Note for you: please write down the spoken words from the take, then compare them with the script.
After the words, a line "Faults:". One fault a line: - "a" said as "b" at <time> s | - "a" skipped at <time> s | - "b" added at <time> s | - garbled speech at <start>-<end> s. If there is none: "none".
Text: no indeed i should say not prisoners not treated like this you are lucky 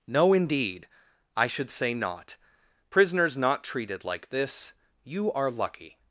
no indeed i should say not prisoners not treated like this you are lucky
Faults:
none